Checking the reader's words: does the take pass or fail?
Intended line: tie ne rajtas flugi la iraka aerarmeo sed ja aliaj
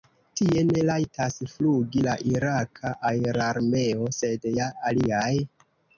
pass